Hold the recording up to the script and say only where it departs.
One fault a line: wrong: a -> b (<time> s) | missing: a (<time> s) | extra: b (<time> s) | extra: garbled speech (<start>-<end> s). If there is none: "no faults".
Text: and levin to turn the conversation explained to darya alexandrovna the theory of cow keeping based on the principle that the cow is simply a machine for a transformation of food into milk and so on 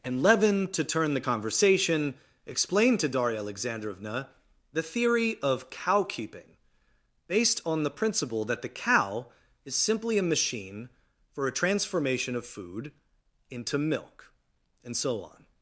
no faults